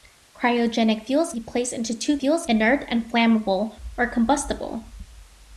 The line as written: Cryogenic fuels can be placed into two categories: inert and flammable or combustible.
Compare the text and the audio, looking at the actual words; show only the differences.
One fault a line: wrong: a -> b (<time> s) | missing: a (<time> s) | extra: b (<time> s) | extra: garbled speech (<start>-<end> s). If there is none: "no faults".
missing: can (1.3 s)
wrong: categories -> fuels (2.2 s)